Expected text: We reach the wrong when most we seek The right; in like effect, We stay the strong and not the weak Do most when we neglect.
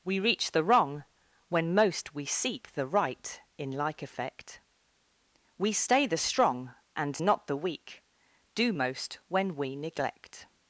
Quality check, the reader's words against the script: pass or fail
pass